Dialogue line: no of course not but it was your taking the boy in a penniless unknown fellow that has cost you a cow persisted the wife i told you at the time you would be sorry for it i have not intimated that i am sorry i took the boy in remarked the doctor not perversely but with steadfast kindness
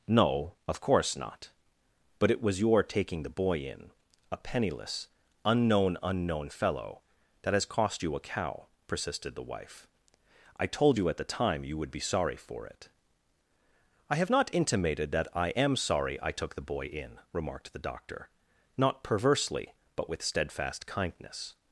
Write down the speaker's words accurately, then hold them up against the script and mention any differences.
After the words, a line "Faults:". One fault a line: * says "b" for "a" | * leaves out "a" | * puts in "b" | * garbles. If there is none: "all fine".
no of course not but it was your taking the boy in a penniless unknown unknown fellow that has cost you a cow persisted the wife i told you at the time you would be sorry for it i have not intimated that i am sorry i took the boy in remarked the doctor not perversely but with steadfast kindness
Faults:
* puts in "unknown"